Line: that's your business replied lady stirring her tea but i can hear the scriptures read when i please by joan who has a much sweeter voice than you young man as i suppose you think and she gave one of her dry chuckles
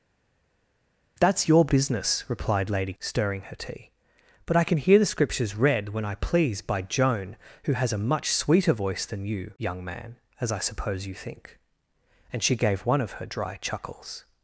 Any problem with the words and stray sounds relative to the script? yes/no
no